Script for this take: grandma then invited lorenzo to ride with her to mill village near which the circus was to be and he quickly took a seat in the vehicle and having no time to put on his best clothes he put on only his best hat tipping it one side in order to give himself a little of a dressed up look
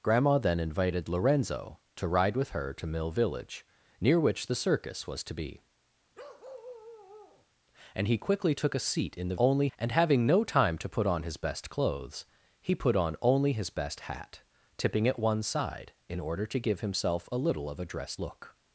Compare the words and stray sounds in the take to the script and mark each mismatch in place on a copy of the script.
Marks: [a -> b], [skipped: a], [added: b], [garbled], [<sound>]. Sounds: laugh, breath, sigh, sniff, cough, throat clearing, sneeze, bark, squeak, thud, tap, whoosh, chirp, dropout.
grandma then invited lorenzo to ride with her to mill village near which the circus was to be [bark] and he quickly took a seat in the [vehicle -> only] and having no time to put on his best clothes he put on only his best hat tipping it one side in order to give himself a little of a dressed [skipped: up] look